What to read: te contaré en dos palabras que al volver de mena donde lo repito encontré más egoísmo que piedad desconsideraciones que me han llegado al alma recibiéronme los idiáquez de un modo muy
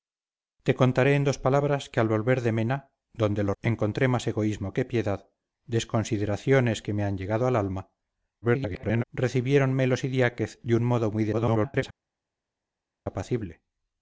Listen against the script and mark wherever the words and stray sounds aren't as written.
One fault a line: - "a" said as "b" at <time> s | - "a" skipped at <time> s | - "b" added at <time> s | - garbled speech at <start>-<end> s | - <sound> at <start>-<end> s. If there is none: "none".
- "repito" skipped at 3.5 s
- garbled speech at 8.4-9.0 s
- garbled speech at 11.3-11.8 s